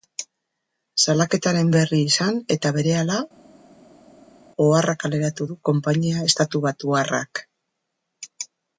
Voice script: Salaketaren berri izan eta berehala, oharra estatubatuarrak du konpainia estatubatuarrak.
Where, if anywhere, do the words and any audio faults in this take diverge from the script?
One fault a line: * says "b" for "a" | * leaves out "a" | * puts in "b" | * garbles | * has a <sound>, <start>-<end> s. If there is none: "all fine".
* says "kaleratu" for "estatubatuarrak"